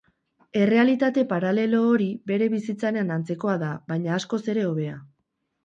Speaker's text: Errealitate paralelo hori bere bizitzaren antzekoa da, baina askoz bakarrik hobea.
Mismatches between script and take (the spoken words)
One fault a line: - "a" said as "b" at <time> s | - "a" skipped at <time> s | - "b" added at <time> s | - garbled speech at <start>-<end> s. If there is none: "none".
- "bakarrik" said as "ere" at 4.6 s